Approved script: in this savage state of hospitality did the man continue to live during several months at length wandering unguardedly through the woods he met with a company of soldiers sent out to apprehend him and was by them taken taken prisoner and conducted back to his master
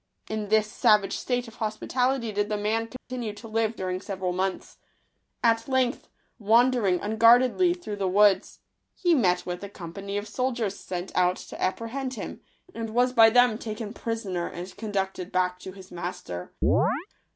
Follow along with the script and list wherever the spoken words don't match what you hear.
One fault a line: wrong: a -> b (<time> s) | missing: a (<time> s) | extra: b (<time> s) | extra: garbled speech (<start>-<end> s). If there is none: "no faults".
missing: taken (13.9 s)